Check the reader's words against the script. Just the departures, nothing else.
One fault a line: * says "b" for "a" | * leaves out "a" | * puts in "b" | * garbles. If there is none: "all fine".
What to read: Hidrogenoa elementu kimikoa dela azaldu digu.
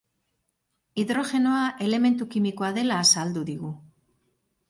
all fine